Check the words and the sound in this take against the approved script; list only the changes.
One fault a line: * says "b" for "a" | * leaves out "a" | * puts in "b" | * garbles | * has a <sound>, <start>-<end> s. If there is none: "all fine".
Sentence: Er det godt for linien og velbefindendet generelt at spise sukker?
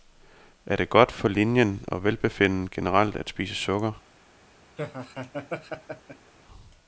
* has a laugh, 4.8-6.3 s